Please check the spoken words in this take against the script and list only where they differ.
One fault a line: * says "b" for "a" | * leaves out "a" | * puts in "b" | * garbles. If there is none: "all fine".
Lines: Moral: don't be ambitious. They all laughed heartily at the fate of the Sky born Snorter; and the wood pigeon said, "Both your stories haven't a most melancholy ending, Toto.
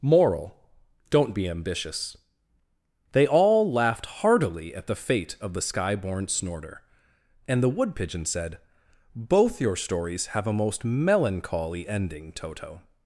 * says "have" for "haven't"